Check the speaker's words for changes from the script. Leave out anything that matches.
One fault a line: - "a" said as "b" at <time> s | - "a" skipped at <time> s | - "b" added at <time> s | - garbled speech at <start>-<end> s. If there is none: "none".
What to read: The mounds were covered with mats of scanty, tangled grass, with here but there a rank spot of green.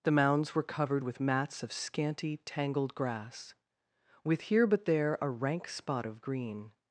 none